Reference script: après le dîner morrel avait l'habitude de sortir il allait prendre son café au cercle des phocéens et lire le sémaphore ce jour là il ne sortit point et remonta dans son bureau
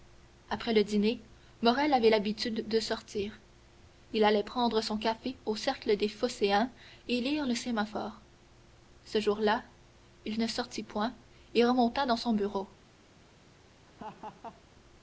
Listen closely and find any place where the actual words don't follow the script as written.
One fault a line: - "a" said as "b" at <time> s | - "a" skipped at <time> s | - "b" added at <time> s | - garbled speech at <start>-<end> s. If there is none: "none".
none